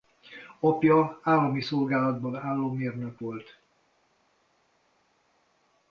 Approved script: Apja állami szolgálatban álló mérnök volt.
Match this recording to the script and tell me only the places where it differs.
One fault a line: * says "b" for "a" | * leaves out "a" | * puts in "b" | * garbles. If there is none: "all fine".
all fine